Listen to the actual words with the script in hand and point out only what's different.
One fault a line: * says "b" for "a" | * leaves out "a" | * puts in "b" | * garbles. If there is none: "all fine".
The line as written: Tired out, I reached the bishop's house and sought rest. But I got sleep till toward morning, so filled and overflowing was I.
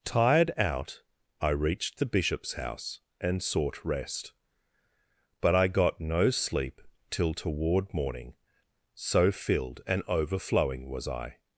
* puts in "no"